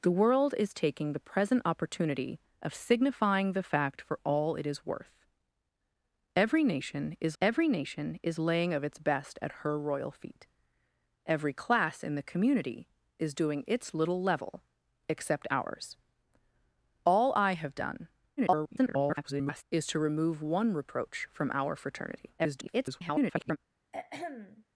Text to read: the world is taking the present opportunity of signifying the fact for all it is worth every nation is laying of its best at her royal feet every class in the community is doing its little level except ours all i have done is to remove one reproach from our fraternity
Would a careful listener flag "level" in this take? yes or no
no